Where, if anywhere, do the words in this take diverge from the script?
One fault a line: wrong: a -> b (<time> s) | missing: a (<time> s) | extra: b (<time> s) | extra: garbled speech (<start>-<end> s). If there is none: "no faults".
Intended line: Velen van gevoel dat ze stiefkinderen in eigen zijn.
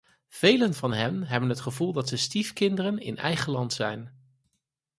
extra: hen hebben het (0.9 s)
extra: land (3.5 s)